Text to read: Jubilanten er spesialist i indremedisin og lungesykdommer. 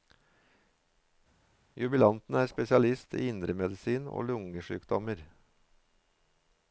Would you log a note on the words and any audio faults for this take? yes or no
no